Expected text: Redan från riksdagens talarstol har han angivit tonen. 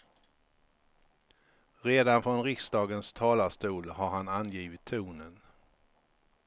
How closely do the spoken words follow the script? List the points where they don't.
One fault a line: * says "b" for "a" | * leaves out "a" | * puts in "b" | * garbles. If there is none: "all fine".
all fine